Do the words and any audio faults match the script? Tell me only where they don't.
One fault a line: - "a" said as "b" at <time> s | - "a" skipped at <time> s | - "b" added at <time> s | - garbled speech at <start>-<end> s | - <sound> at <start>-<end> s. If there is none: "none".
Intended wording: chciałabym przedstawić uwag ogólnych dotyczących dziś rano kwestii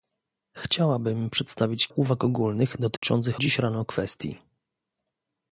- dropout at 3.0-3.0 s